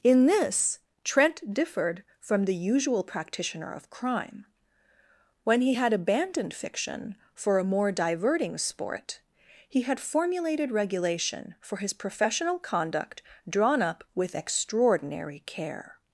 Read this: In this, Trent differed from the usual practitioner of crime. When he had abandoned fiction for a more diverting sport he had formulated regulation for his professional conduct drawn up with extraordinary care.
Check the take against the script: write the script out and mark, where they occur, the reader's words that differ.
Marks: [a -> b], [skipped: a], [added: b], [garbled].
In this, Trent differed from the usual practitioner of crime. When he had abandoned fiction for a more diverting sport he had formulated regulation for his professional conduct drawn up with extraordinary care.